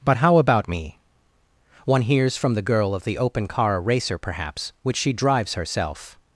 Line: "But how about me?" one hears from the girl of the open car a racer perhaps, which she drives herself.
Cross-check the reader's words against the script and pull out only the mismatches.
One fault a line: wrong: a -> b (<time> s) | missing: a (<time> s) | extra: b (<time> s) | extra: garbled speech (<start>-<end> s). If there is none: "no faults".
missing: a (3.8 s)